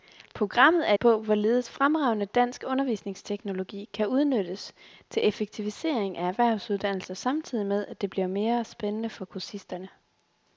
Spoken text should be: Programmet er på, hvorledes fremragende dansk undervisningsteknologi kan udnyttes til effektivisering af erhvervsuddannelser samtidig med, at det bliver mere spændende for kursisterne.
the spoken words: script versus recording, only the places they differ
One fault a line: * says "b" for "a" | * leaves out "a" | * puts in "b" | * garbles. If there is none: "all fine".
all fine